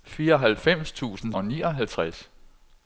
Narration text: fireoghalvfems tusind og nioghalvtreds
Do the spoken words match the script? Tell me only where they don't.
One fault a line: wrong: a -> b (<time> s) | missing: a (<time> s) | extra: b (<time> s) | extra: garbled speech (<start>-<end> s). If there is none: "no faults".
no faults